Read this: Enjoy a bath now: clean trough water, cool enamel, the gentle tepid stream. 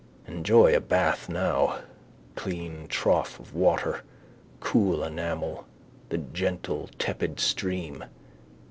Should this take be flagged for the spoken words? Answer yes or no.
yes